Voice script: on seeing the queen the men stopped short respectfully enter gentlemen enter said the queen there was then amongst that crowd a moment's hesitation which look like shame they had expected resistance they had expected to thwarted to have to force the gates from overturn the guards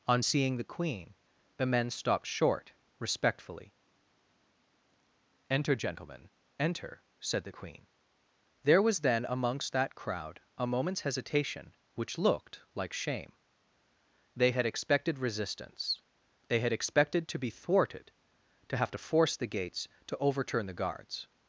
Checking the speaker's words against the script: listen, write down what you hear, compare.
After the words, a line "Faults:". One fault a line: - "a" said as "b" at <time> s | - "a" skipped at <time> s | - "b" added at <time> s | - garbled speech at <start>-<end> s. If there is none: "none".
on seeing the queen the men stopped short respectfully enter gentlemen enter said the queen there was then amongst that crowd a moment's hesitation which looked like shame they had expected resistance they had expected to be thwarted to have to force the gates to overturn the guards
Faults:
- "look" said as "looked" at 12.2 s
- "be" added at 17.4 s
- "from" said as "to" at 20.1 s